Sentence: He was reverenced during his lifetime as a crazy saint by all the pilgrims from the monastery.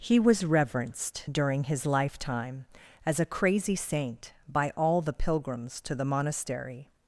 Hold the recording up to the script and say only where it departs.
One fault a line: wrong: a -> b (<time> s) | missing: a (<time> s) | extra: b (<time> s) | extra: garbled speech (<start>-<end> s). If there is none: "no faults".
wrong: from -> to (5.8 s)